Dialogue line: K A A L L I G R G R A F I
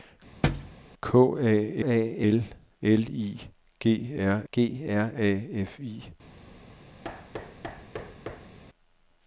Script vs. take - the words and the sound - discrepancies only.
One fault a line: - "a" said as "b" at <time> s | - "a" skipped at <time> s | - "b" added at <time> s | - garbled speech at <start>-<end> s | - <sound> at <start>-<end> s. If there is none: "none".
- thud at 0.4-0.7 s
- thud at 7.0-8.6 s